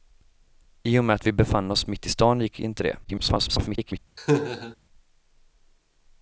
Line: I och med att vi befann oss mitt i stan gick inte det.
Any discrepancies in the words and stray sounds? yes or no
yes